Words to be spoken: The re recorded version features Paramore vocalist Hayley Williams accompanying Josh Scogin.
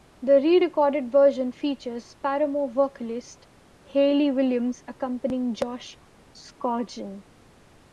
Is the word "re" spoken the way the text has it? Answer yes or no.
yes